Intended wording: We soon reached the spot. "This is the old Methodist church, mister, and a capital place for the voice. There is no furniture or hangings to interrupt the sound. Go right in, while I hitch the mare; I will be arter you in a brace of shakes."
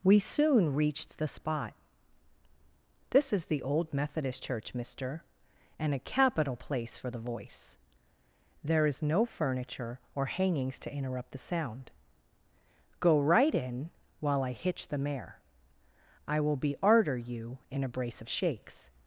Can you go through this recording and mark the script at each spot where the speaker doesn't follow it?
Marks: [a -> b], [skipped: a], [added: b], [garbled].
We soon reached the spot. "This is the old Methodist church, mister, and a capital place for the voice. There is no furniture or hangings to interrupt the sound. Go right in, while I hitch the mare; I will be arter you in a brace of shakes."